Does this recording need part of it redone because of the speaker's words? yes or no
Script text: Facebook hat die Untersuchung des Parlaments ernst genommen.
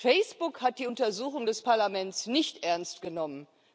yes